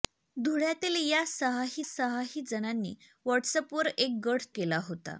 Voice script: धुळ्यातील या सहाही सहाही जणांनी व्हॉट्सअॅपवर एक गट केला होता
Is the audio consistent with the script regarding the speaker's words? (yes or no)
yes